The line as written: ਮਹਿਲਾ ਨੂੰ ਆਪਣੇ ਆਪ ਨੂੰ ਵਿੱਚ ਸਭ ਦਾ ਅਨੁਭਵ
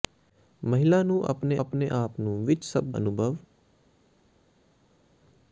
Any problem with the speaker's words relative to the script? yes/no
yes